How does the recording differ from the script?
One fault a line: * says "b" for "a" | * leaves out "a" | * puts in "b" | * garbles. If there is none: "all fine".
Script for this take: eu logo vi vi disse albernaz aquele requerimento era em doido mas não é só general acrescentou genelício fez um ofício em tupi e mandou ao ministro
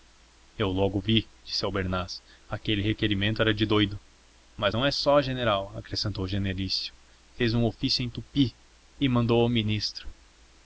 * leaves out "vi"
* says "de" for "em"